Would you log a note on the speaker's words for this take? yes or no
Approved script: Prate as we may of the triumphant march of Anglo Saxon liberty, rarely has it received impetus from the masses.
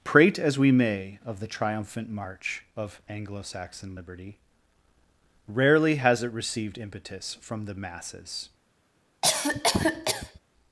no